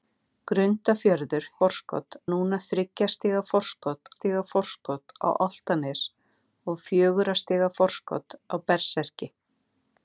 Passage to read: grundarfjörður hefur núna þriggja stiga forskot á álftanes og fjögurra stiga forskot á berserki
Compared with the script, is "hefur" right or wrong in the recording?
wrong